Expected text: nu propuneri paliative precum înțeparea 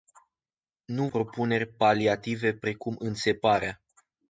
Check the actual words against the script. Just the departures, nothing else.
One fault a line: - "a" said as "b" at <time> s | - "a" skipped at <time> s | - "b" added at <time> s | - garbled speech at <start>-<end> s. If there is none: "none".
none